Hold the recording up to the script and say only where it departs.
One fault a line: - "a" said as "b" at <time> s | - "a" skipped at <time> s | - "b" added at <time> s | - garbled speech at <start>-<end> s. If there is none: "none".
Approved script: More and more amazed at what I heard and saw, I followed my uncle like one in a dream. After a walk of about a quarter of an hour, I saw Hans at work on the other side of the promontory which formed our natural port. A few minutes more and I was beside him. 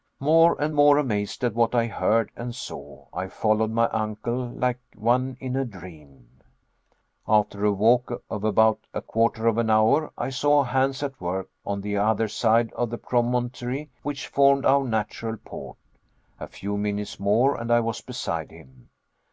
none